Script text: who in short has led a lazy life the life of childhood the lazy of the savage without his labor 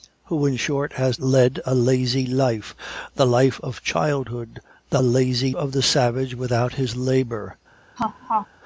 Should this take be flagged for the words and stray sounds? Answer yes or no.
yes